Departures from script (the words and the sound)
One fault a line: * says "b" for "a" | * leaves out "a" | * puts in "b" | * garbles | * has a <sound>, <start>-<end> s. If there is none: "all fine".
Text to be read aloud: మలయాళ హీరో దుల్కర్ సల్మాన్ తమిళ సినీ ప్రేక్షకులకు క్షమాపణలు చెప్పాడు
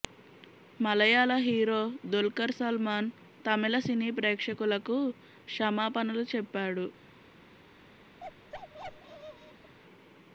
* has a bark, 8.2-9.8 s